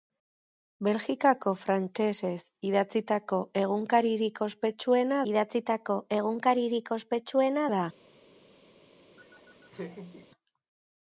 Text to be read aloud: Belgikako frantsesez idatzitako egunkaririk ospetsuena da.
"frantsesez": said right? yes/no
yes